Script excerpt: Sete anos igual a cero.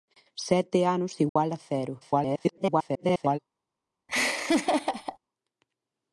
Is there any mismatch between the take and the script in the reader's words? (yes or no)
yes